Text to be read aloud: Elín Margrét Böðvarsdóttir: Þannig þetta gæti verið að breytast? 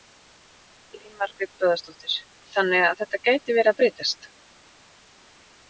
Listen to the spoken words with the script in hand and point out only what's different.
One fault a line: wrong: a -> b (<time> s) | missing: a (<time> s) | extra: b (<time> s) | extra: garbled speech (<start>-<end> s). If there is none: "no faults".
extra: að (2.9 s)